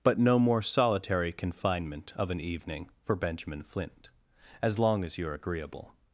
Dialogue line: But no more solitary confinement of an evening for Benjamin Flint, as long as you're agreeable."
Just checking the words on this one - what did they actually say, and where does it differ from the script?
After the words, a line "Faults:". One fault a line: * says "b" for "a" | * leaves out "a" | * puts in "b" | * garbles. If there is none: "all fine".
But no more solitary confinement of an evening for Benjamin Flint, as long as you're agreeable."
Faults:
all fine